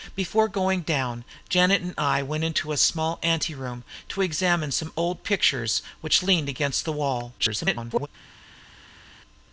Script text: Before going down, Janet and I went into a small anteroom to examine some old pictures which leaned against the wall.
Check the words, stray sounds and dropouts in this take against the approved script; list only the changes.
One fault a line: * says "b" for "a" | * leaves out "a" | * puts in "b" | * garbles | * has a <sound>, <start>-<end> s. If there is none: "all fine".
* garbles